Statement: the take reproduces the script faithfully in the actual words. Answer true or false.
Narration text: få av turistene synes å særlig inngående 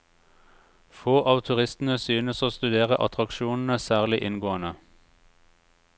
false